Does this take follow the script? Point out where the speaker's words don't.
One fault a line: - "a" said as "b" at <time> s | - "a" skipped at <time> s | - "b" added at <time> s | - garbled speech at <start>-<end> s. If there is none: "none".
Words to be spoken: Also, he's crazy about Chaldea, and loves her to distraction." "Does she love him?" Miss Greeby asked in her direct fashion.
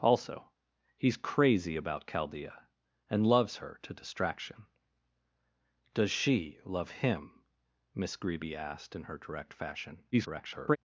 - garbled speech at 10.1-10.8 s